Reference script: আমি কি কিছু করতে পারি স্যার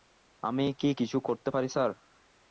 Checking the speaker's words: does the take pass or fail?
pass